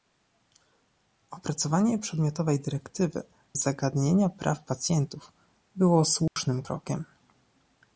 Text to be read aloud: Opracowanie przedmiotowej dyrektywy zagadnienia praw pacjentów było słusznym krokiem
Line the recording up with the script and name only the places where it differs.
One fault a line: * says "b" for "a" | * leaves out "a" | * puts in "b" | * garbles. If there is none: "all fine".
all fine